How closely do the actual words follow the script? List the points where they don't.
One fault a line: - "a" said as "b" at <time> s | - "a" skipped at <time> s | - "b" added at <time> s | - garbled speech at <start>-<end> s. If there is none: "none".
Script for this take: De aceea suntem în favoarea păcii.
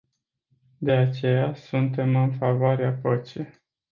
none